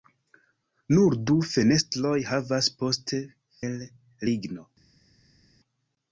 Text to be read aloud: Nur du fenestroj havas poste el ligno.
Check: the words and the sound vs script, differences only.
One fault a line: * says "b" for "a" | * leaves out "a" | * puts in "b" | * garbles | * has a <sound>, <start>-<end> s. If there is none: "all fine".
all fine